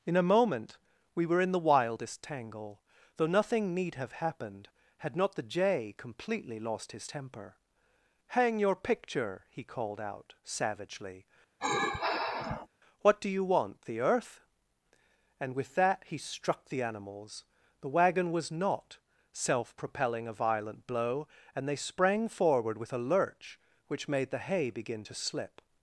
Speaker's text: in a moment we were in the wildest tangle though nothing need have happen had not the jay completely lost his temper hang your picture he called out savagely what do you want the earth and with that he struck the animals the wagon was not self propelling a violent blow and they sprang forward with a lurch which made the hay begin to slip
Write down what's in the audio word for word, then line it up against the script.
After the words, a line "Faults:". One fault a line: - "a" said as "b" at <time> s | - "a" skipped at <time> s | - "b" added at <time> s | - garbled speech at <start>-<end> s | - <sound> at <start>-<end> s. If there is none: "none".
in a moment we were in the wildest tangle though nothing need have happened had not the jay completely lost his temper hang your picture he called out savagely what do you want the earth and with that he struck the animals the wagon was not self propelling a violent blow and they sprang forward with a lurch which made the hay begin to slip
Faults:
- "happen" said as "happened" at 4.1 s
- sigh at 11.6-12.7 s